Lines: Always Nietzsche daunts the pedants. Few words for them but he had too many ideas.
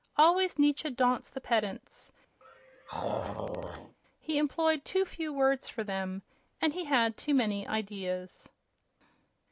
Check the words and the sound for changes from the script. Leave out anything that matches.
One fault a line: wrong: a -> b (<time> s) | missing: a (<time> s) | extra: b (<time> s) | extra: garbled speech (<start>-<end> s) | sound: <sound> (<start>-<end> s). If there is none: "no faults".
sound: throat clearing (2.4-4.0 s)
extra: He employed too (4.2 s)
wrong: but -> and (6.6 s)